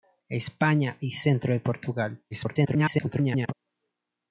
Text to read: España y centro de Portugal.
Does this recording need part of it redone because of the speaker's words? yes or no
yes